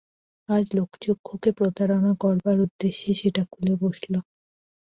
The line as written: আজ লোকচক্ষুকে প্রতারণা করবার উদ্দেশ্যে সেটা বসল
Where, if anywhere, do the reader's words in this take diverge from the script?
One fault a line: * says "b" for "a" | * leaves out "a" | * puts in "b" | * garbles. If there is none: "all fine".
* puts in "খুলে"